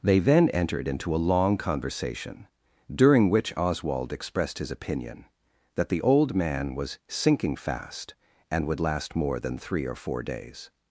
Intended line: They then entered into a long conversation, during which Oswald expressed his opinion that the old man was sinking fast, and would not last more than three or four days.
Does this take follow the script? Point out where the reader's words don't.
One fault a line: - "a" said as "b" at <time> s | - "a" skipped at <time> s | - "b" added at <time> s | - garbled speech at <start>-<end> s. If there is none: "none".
- "not" skipped at 8.8 s